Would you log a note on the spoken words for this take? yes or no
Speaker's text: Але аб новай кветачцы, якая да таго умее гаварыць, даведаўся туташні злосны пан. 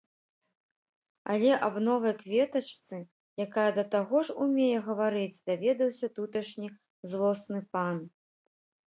yes